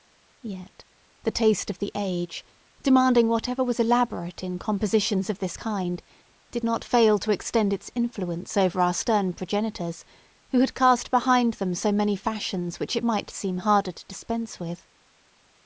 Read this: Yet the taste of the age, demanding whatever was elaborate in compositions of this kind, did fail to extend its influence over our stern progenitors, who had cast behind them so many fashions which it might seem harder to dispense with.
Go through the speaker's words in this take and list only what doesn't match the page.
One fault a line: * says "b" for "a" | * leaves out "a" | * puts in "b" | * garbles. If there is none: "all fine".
* puts in "not"